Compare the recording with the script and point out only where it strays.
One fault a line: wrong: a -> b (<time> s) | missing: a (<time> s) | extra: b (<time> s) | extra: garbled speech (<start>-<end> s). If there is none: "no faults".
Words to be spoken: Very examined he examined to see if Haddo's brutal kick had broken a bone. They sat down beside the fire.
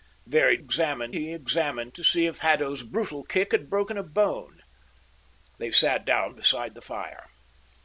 no faults